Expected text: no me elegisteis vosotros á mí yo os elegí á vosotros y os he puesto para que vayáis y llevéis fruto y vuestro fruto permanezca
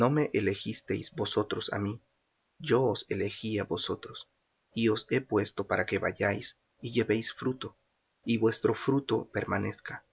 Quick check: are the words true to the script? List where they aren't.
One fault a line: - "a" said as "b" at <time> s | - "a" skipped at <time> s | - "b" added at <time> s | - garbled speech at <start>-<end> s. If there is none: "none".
none